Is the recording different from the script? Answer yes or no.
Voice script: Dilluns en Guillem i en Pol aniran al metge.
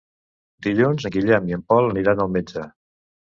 no